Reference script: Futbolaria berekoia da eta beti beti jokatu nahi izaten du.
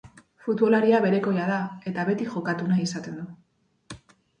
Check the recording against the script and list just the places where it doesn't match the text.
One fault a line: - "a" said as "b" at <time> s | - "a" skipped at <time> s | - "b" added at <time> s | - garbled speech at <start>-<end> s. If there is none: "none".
- "beti" skipped at 2.3 s